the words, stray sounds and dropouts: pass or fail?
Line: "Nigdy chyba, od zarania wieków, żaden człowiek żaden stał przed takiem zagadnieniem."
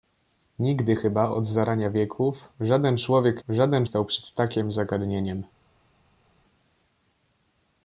pass